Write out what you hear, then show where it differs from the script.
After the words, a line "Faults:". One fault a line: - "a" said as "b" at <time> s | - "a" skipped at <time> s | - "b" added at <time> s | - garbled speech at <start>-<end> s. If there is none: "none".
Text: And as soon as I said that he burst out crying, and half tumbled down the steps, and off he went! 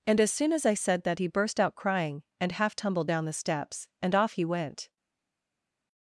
And as soon as I said that he burst out crying, and half tumbled down the steps, and off he went!
Faults:
none